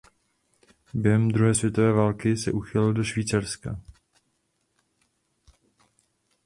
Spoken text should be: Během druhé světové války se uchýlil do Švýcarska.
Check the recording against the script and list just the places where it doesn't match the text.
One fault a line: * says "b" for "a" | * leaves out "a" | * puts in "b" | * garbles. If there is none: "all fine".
all fine